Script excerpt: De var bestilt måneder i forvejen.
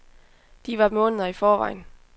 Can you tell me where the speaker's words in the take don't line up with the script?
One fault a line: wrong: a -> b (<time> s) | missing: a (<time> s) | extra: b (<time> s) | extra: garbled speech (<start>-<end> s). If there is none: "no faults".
missing: bestilt (0.9 s)